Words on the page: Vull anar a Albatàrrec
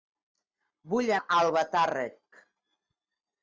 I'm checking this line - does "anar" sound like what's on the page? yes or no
no